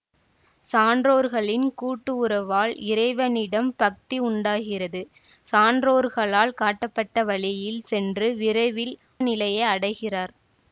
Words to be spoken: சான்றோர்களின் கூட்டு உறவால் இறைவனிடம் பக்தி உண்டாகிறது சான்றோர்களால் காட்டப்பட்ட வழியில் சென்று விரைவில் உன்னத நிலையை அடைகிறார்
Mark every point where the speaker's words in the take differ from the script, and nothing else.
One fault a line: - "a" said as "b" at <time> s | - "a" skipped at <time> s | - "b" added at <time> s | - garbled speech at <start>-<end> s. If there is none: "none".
- "உன்னத" skipped at 8.9 s